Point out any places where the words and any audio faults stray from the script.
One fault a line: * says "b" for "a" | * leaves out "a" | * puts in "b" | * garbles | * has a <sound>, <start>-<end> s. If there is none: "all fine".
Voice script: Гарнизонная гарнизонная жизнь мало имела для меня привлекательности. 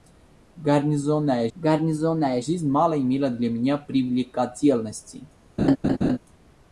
* has a laugh, 5.6-6.2 s